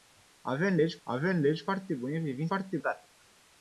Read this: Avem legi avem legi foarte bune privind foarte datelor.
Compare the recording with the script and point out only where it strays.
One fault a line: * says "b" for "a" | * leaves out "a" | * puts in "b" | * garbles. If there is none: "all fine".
all fine